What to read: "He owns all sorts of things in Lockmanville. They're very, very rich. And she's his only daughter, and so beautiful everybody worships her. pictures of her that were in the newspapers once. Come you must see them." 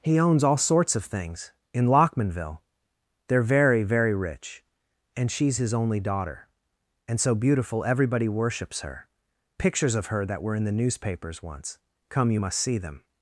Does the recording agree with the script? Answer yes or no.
yes